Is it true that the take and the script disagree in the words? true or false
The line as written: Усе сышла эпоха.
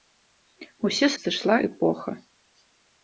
false